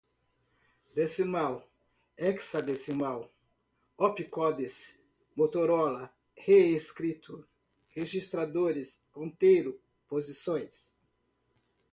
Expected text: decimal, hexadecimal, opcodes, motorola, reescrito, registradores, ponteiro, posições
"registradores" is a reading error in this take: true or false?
false